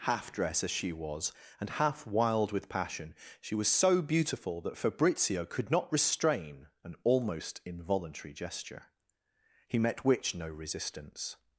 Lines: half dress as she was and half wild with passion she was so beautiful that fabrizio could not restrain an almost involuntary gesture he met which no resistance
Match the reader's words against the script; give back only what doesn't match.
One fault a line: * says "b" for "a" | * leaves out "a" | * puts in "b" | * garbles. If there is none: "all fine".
all fine